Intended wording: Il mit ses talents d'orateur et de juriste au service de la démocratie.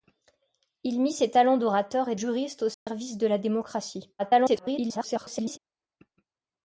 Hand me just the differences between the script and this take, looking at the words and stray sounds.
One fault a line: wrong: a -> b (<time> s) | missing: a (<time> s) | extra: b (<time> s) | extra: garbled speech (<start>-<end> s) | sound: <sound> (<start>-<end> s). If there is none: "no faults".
missing: de (2.1 s)
sound: dropout (2.7-2.9 s)
extra: garbled speech (4.2-5.6 s)